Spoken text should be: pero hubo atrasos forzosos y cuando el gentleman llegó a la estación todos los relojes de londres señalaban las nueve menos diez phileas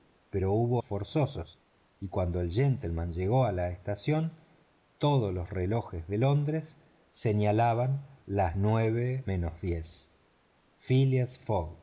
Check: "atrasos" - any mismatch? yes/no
yes